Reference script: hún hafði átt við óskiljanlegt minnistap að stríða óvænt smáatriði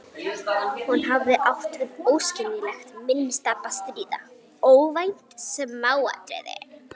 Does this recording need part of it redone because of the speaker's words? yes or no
no